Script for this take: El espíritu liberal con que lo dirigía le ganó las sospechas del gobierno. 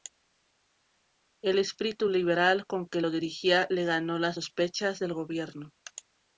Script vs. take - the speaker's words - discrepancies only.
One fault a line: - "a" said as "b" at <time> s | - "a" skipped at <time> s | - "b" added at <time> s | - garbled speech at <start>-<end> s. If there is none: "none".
none